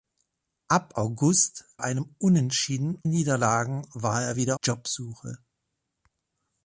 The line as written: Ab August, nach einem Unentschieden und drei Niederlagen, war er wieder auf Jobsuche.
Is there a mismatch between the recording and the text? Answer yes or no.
yes